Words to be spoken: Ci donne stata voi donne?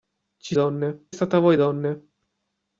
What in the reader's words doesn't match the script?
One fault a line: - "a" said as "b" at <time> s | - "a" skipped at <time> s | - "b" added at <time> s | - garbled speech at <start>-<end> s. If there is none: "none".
none